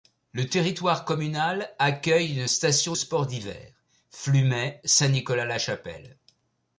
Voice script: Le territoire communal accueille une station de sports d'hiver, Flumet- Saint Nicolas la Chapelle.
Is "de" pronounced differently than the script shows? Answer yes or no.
yes